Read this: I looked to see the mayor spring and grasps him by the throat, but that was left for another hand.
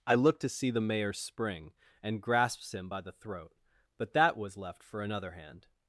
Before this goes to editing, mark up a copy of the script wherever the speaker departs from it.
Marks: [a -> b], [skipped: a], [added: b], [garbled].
I looked to see the mayor spring and grasps him by the throat, but that was left for another hand.